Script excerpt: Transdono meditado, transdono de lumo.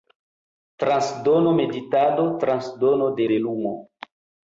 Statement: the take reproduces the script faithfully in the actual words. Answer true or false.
false